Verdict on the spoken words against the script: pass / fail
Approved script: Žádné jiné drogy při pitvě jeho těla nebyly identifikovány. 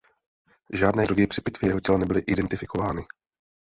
fail